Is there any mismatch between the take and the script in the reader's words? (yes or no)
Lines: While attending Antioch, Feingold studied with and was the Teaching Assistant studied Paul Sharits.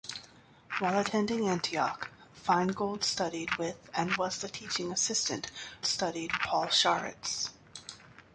no